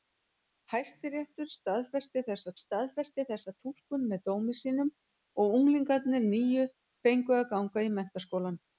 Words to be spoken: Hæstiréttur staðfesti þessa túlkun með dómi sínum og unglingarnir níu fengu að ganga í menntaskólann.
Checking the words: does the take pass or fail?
fail